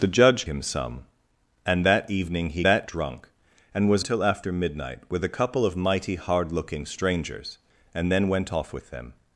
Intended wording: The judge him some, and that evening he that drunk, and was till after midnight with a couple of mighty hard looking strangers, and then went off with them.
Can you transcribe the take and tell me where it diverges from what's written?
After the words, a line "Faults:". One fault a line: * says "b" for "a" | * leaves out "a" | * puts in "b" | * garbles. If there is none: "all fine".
The judge him some, and that evening he that drunk, and was till after midnight with a couple of mighty hard looking strangers, and then went off with them.
Faults:
all fine